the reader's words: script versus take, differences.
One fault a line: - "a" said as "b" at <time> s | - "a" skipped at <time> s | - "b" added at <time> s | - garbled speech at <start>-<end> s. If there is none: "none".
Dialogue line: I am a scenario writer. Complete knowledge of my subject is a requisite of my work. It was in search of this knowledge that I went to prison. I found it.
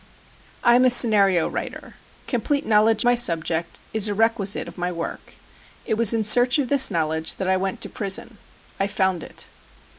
- "of" skipped at 3.0 s